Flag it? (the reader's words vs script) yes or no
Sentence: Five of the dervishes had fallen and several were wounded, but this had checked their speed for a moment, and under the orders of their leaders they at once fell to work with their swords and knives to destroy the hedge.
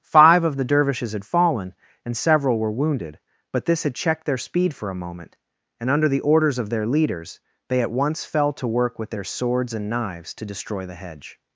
no